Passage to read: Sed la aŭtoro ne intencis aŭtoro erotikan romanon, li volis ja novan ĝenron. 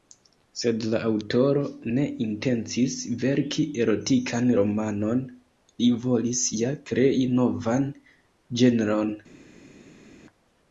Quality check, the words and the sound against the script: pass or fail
fail